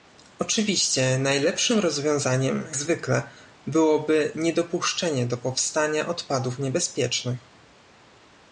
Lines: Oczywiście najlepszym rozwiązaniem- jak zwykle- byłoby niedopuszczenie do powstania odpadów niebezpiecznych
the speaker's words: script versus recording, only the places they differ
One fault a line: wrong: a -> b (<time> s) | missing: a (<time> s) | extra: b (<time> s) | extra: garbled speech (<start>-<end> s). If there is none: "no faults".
missing: jak (2.6 s)